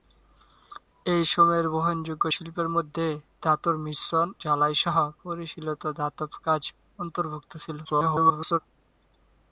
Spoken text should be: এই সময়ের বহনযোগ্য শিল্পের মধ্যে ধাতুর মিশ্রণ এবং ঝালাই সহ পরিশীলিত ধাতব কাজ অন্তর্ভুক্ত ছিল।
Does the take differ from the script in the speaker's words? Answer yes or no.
yes